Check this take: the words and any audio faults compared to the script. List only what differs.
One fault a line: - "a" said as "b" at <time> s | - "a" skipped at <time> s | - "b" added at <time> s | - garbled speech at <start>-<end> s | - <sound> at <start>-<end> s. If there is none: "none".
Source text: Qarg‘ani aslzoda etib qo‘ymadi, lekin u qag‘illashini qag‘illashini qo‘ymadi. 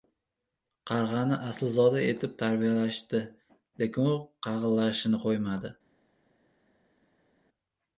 - "qo‘ymadi" said as "tarbiyalashdi" at 2.4 s
- "qag‘illashini" skipped at 5.2 s